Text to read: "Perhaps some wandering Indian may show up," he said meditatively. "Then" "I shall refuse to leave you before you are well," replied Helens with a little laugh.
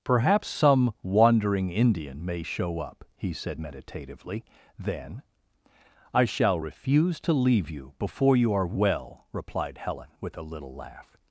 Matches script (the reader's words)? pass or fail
fail